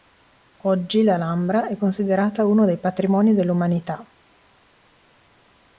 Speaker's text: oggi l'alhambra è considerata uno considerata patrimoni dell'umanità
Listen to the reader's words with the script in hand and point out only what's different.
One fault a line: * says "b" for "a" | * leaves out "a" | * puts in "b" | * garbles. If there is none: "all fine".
* says "dei" for "considerata"